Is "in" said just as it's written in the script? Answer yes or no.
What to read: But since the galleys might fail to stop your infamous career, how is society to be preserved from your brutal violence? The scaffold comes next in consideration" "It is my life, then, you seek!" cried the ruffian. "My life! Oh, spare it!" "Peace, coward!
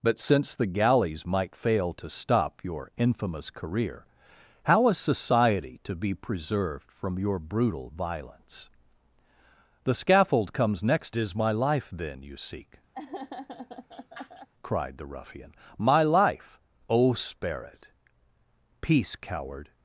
no